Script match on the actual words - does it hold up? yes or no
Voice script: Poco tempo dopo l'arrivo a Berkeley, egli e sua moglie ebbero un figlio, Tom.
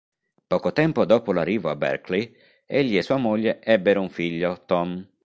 yes